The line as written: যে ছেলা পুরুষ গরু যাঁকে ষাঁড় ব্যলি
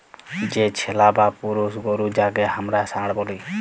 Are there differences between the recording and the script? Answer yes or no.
yes